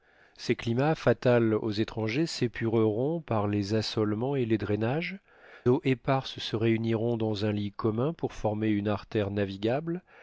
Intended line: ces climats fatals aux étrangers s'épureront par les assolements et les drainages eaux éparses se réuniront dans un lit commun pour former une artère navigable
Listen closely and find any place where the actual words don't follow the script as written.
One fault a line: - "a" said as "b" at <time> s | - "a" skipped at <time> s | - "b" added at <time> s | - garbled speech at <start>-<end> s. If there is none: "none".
none